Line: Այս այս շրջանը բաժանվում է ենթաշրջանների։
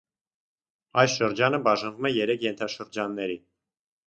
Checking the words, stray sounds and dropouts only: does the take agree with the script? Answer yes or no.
no